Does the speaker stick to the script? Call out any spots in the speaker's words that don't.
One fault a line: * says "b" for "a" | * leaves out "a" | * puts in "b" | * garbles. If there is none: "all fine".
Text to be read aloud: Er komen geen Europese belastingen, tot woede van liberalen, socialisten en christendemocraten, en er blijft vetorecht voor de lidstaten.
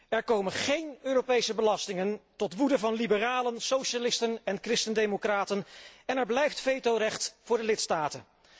all fine